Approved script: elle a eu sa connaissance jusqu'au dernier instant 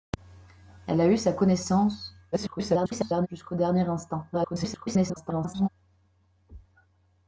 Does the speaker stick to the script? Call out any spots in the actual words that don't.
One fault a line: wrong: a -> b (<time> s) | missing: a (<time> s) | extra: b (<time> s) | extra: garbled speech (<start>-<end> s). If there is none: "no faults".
extra: garbled speech (2.3-3.3 s)
extra: garbled speech (4.3-5.7 s)